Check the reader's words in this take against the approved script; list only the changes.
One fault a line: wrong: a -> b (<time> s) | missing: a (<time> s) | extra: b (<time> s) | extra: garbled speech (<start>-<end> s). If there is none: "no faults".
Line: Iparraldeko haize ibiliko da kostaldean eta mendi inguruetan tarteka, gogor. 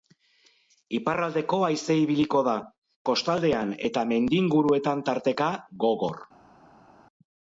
no faults